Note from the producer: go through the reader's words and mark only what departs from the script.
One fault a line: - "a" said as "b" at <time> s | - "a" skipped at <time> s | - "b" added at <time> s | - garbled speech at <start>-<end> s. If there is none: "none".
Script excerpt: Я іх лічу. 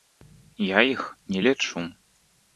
- "не" added at 1.3 s